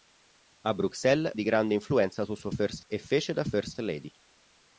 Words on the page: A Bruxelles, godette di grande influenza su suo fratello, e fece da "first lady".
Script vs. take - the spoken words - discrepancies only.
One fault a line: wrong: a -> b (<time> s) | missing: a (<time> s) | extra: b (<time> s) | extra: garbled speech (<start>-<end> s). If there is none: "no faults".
missing: godette (1.3 s)
wrong: fratello -> first (2.5 s)